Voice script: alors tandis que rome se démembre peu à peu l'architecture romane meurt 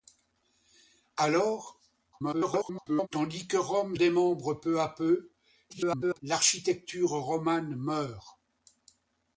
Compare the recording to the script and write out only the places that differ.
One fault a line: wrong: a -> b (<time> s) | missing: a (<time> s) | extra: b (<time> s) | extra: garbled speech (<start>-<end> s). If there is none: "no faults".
extra: garbled speech (2.1-3.1 s)
missing: se (4.0 s)
extra: garbled speech (5.7-6.2 s)